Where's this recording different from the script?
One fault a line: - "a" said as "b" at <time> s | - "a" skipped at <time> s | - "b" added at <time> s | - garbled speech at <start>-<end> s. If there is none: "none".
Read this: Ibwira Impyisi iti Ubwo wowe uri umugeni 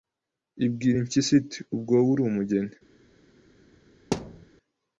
none